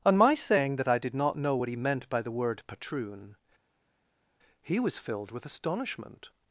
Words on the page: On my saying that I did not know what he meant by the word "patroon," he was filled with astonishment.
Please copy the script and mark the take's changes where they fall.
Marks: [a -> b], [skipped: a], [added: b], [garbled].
On my saying that I did not know what he meant by the word "patroon," he was filled with astonishment.